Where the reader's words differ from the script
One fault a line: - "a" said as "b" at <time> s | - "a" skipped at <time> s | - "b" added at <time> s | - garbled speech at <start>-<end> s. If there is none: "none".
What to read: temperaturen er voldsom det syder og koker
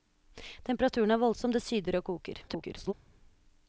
- garbled speech at 2.5-2.9 s